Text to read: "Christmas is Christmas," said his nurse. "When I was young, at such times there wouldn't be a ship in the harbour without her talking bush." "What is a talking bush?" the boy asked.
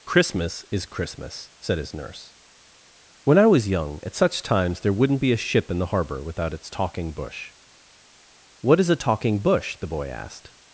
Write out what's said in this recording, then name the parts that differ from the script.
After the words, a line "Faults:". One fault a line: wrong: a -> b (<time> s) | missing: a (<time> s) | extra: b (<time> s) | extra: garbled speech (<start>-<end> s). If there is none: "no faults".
"Christmas is Christmas," said his nurse. "When I was young, at such times there wouldn't be a ship in the harbour without its talking bush." "What is a talking bush?" the boy asked.
Faults:
wrong: her -> its (6.5 s)